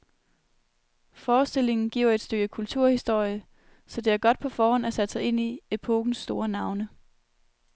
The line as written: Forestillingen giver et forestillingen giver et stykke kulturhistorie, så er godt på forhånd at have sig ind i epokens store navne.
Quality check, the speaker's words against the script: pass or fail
fail